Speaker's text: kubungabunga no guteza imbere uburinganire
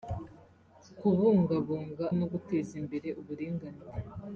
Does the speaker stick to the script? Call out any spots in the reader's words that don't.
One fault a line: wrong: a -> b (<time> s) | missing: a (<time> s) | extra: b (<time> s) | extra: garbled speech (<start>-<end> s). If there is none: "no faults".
no faults